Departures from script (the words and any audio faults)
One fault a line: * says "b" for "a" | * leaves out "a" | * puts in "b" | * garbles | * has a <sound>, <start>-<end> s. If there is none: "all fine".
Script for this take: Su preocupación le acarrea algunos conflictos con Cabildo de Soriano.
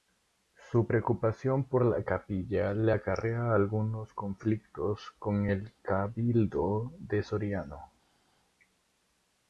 * puts in "por la capilla"
* puts in "el"